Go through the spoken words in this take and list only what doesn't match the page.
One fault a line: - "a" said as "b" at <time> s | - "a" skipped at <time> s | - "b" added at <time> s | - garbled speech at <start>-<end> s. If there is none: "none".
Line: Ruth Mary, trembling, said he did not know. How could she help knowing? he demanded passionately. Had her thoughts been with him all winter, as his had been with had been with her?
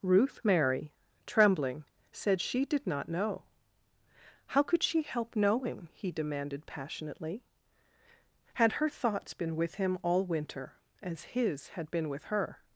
- "he" said as "she" at 2.4 s
- "had been with" skipped at 12.2 s